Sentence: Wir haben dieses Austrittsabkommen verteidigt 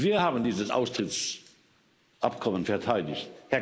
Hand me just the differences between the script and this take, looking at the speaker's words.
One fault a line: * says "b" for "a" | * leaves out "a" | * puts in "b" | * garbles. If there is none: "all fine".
all fine